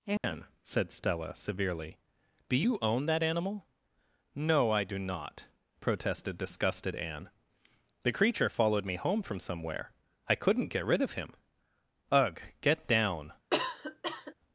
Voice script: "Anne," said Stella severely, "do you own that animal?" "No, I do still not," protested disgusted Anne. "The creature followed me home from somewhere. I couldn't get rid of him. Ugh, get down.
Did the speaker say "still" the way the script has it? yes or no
no